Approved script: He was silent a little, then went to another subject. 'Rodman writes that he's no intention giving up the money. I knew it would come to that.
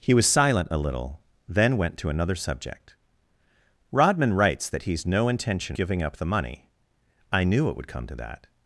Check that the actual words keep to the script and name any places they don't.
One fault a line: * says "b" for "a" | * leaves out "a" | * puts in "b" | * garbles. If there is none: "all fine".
all fine